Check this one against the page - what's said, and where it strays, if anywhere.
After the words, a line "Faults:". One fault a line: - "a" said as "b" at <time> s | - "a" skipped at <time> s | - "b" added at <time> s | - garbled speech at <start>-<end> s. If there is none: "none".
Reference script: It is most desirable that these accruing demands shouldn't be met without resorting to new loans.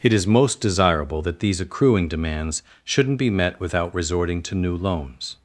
It is most desirable that these accruing demands shouldn't be met without resorting to new loans.
Faults:
none